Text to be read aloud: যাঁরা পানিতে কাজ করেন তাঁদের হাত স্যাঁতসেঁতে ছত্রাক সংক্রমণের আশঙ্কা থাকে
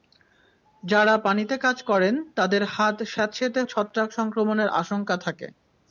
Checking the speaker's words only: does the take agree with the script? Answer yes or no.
yes